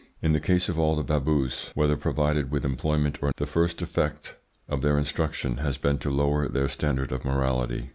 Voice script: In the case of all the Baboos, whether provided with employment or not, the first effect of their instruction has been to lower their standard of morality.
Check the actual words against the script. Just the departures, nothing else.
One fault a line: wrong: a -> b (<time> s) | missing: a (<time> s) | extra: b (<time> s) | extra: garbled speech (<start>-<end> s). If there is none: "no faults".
missing: not (3.3 s)